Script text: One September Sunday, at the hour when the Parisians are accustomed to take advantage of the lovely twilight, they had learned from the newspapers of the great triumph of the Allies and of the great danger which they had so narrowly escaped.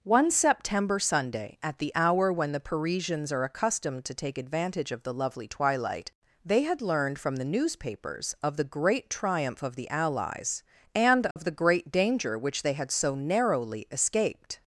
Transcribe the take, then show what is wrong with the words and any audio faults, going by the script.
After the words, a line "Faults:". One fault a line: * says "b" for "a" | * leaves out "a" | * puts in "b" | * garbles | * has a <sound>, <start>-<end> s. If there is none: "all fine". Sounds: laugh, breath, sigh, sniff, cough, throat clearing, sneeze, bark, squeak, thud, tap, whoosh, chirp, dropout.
One September Sunday, at the hour when the Parisians are accustomed to take advantage of the lovely twilight, they had learned from the newspapers of the great triumph of the Allies and of the great danger which they had so narrowly escaped.
Faults:
* has a dropout, 11.3-11.4 s